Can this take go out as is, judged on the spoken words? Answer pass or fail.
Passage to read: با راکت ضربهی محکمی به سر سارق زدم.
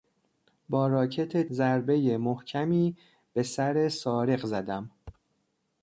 pass